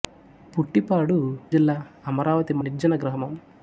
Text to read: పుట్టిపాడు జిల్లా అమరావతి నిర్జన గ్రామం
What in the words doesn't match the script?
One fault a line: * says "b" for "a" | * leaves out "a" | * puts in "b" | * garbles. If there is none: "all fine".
all fine